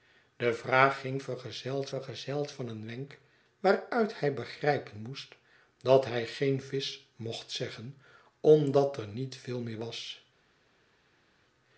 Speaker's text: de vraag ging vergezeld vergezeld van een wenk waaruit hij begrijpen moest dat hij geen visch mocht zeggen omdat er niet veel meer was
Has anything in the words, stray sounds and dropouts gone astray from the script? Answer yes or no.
no